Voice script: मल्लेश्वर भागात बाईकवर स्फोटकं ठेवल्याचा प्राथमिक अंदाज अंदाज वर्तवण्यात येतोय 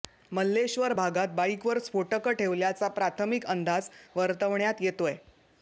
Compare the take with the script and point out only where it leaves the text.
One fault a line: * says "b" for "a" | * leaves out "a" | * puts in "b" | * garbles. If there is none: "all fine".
* leaves out "अंदाज"